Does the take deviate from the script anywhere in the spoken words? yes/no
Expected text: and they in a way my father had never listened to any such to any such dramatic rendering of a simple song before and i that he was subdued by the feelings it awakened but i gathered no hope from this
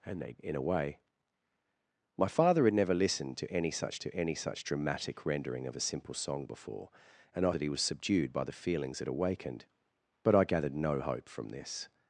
no